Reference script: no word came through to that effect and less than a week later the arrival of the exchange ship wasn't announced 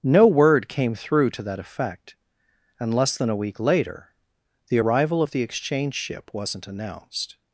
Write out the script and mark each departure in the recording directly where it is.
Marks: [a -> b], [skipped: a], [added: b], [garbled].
no word came through to that effect and less than a week later the arrival of the exchange ship wasn't announced